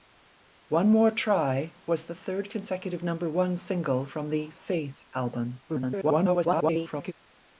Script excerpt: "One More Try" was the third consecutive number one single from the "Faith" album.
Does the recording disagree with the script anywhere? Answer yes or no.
yes